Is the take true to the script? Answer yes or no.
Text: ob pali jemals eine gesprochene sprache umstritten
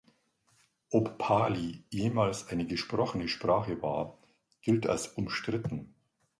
no